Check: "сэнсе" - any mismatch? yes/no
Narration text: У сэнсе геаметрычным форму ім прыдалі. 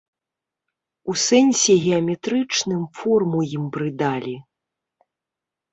no